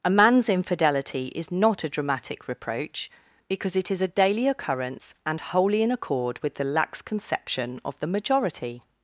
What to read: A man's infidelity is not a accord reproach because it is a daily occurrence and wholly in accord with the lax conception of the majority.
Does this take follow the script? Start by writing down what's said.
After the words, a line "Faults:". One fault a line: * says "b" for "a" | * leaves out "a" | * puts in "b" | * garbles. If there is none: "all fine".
A man's infidelity is not a dramatic reproach because it is a daily occurrence and wholly in accord with the lax conception of the majority.
Faults:
* says "dramatic" for "accord"